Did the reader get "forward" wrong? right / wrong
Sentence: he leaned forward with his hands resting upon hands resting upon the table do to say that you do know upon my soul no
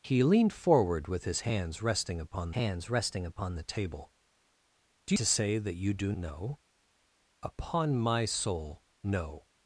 right